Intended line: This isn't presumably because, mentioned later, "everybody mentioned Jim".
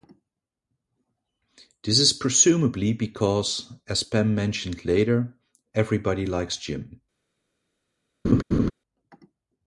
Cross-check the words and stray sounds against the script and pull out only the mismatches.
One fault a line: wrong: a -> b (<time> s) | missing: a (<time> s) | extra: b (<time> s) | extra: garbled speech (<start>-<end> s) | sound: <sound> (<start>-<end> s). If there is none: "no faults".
wrong: isn't -> is (2.0 s)
extra: as Pam (3.9 s)
wrong: mentioned -> likes (6.3 s)
sound: laugh (8.2-8.7 s)